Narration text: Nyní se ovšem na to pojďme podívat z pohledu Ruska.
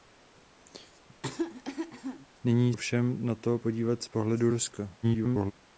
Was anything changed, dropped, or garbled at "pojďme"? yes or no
yes